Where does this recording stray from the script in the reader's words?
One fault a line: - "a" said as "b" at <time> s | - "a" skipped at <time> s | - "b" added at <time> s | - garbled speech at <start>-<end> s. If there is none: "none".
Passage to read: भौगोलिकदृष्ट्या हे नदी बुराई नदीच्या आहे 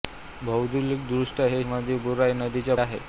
none